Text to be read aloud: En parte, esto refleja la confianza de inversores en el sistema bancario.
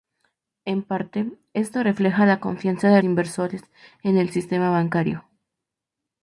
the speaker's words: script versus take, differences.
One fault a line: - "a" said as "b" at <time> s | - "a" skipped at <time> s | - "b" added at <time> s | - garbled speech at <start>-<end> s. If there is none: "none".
none